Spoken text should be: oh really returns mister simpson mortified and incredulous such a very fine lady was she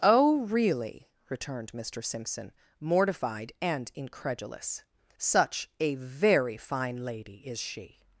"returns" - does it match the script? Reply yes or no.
no